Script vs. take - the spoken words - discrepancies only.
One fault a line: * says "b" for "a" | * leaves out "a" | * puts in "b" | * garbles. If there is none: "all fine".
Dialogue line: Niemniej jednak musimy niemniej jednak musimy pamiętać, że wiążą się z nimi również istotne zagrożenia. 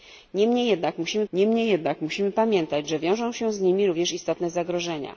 all fine